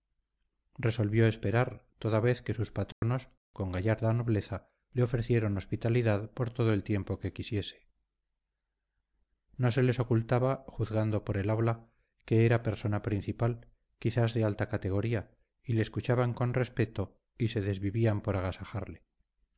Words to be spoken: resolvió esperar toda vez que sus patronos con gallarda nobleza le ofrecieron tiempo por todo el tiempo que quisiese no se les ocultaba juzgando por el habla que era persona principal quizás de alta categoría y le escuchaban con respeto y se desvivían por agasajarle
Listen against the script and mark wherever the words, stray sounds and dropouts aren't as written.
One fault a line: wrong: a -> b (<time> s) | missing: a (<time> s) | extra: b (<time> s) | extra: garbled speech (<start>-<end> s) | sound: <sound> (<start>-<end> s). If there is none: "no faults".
sound: dropout (2.9-3.0 s)
wrong: tiempo -> hospitalidad (5.6 s)